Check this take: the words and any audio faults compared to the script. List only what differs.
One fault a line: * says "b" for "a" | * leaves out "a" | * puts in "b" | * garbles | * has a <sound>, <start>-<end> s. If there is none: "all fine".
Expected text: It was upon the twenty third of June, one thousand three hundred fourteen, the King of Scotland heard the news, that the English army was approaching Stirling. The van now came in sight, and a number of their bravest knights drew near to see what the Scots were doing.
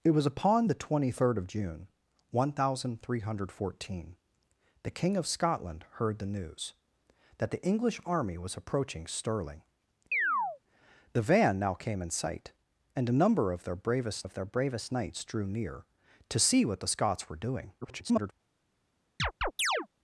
* has a chirp, 10.1-10.6 s
* puts in "of their bravest"
* garbles
* has a chirp, 19.2-19.9 s